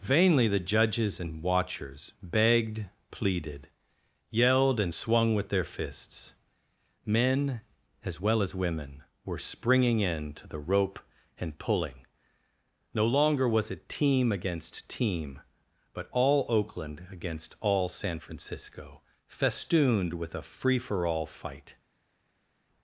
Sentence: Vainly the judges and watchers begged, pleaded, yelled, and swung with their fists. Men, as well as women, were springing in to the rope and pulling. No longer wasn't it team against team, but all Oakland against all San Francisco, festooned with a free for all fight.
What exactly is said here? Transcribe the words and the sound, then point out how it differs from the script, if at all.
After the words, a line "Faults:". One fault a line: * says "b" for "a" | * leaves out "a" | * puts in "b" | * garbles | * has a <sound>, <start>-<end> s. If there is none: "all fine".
Vainly the judges and watchers begged, pleaded, yelled, and swung with their fists. Men, as well as women, were springing in to the rope and pulling. No longer was it team against team, but all Oakland against all San Francisco, festooned with a free for all fight.
Faults:
* says "was" for "wasn't"